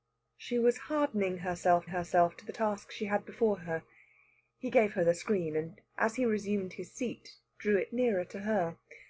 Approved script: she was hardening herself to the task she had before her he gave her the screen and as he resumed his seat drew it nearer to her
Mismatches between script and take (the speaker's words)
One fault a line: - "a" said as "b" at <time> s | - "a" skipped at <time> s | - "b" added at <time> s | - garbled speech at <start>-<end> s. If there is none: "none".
- "herself" added at 1.9 s